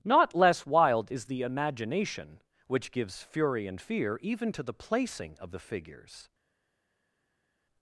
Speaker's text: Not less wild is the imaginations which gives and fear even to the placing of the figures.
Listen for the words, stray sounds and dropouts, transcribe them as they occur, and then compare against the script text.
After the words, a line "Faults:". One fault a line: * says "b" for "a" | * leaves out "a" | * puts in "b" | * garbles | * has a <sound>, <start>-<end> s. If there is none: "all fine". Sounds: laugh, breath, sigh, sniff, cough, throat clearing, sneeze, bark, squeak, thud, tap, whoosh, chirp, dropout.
Not less wild is the imagination which gives fury and fear even to the placing of the figures.
Faults:
* says "imagination" for "imaginations"
* puts in "fury"